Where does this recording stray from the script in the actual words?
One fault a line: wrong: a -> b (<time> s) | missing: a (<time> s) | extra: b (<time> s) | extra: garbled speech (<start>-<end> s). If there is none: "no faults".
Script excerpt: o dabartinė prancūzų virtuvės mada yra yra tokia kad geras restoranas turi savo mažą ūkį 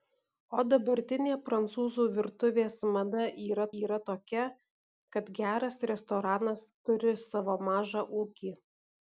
no faults